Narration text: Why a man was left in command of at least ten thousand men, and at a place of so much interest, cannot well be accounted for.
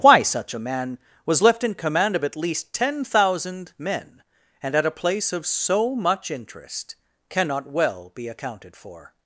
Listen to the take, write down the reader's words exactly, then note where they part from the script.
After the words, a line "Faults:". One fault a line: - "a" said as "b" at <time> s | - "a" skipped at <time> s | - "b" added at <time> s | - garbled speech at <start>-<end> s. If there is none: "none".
Why such a man was left in command of at least ten thousand men, and at a place of so much interest, cannot well be accounted for.
Faults:
- "such" added at 0.2 s